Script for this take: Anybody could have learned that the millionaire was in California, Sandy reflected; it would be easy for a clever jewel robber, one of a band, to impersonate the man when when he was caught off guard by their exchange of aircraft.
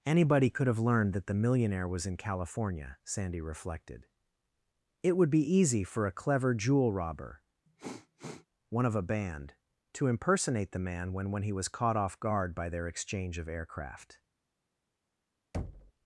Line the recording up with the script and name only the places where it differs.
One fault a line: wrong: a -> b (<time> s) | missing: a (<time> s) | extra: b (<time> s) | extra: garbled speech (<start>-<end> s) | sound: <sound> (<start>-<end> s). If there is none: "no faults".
sound: sniff (7.7-8.5 s)
sound: thud (15.5-15.9 s)